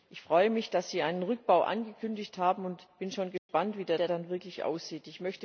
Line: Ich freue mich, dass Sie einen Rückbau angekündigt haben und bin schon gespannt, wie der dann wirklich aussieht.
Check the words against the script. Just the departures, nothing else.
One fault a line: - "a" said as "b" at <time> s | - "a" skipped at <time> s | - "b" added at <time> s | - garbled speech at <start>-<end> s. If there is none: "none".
- "der" added at 4.0 s